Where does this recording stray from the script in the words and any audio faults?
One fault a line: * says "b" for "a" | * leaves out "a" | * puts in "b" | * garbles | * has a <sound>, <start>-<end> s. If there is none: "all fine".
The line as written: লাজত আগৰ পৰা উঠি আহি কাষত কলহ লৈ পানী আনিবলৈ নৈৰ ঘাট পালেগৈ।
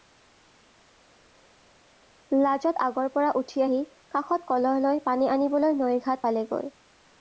all fine